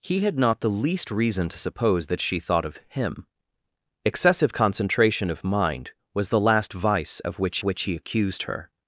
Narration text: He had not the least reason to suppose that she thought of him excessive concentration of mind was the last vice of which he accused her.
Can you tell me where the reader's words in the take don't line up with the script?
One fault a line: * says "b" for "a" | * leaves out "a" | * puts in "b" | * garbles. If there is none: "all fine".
* puts in "which"